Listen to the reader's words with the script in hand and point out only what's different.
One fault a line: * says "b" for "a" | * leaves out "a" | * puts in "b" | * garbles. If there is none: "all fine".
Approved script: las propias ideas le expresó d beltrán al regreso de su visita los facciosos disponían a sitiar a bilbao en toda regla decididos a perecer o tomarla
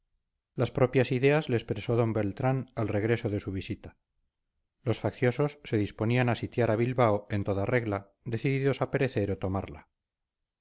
* puts in "se"